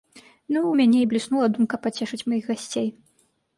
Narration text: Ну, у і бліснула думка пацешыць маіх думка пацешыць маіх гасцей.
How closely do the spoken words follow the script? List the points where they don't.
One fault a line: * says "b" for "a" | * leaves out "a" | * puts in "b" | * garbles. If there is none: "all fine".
* puts in "мяне"
* leaves out "думка пацешыць маіх"